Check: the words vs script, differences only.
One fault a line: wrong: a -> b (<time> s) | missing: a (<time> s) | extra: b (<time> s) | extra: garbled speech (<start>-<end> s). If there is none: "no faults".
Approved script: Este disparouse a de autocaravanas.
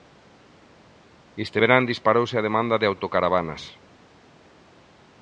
extra: verán (1.6 s)
extra: demanda (2.5 s)